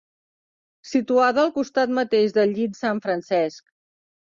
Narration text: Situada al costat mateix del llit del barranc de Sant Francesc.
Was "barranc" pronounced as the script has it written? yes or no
no